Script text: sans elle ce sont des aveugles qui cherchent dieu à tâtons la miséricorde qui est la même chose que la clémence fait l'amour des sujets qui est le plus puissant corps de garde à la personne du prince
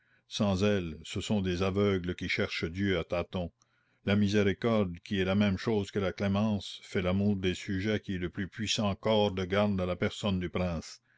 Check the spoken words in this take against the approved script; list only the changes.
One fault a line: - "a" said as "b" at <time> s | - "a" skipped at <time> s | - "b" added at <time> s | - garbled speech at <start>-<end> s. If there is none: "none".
none